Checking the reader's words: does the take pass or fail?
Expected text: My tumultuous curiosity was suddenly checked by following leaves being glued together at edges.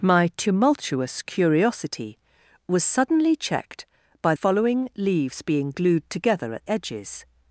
pass